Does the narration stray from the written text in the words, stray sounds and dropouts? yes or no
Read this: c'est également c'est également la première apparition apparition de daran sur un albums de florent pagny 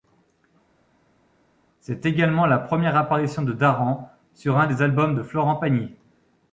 yes